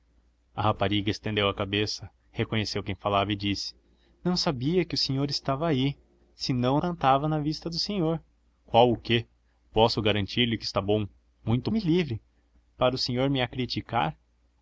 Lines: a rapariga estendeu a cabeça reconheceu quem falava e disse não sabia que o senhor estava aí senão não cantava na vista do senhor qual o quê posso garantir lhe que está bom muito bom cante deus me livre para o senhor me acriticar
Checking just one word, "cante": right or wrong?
wrong